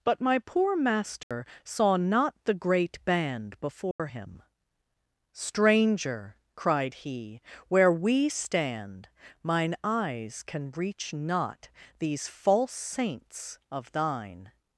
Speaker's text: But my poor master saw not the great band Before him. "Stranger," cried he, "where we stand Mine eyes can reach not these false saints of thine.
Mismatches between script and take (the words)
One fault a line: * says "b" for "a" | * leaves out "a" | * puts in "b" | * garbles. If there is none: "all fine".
all fine